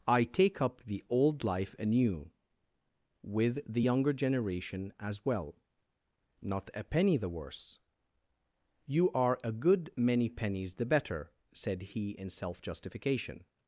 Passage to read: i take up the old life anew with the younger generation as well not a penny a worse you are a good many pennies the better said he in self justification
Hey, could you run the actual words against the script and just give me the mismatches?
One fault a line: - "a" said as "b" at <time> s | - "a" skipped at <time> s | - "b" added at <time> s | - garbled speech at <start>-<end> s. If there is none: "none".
- "a" said as "the" at 7.2 s